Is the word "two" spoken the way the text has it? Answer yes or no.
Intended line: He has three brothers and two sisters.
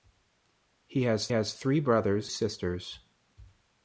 no